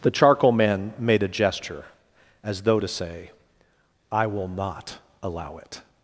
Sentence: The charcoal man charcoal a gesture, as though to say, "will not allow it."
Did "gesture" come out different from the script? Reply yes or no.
no